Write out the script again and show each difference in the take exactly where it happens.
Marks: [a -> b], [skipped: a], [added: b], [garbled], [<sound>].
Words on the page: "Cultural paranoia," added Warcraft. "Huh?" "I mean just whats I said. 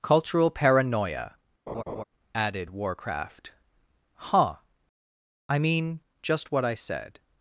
"Cultural paranoia," [laugh] added Warcraft. "Huh?" "I mean just [whats -> what] I said.